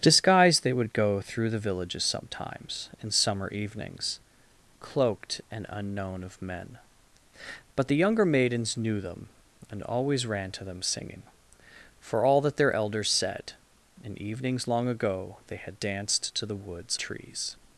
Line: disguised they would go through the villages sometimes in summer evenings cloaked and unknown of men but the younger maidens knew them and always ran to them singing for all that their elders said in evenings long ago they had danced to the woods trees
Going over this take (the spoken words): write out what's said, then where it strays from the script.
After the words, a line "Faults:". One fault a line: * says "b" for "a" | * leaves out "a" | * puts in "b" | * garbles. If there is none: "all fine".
disguised they would go through the villages sometimes in summer evenings cloaked and unknown of men but the younger maidens knew them and always ran to them singing for all that their elders said in evenings long ago they had danced to the woods trees
Faults:
all fine